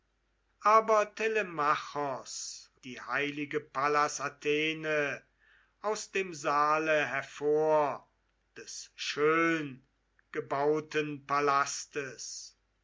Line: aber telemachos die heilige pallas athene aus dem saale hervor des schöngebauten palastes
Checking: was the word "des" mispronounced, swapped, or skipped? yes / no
no